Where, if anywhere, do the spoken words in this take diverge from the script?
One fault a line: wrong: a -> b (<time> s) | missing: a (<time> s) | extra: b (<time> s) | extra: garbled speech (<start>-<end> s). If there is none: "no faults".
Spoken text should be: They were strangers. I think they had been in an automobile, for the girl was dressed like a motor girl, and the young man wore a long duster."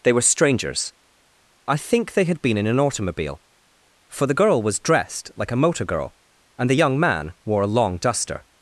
no faults